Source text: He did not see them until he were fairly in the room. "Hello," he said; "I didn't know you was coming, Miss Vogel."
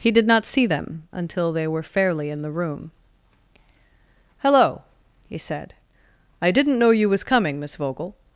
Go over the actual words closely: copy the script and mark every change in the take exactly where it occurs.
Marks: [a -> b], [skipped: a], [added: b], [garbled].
He did not see them until [he -> they] were fairly in the room. "Hello," he said; "I didn't know you was coming, Miss Vogel."